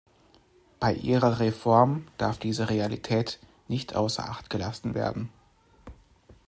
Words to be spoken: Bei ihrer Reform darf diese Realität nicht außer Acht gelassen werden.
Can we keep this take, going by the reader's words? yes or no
yes